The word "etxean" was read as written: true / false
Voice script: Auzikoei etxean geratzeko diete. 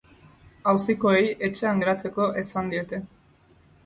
true